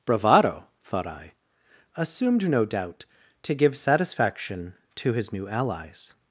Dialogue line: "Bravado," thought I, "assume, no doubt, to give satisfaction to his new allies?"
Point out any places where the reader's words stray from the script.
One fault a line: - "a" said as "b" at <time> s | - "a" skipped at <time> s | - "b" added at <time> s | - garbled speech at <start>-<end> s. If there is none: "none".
- "assume" said as "assumed" at 1.9 s